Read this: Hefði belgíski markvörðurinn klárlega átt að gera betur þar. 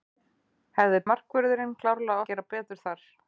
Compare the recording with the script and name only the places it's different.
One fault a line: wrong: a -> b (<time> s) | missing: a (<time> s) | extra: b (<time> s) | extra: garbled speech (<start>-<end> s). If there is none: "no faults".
missing: belgíski (1.0 s)
missing: átt (2.2 s)